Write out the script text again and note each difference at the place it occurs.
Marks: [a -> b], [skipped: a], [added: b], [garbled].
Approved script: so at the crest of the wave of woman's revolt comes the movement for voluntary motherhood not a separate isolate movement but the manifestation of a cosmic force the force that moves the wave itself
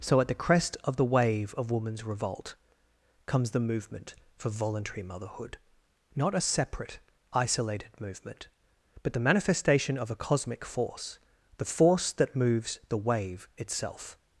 so at the crest of the wave of woman's revolt comes the movement for voluntary motherhood not a separate [isolate -> isolated] movement but the manifestation of a cosmic force the force that moves the wave itself